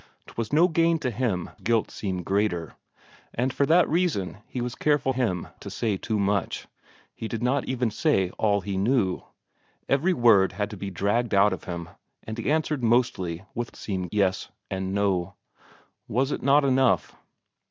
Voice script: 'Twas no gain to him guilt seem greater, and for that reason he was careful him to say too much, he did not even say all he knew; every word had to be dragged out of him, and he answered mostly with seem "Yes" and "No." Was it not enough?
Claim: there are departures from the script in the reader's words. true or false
false